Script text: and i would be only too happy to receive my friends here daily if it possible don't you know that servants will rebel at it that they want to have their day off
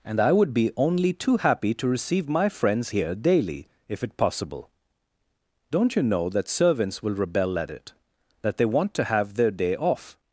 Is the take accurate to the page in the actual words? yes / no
yes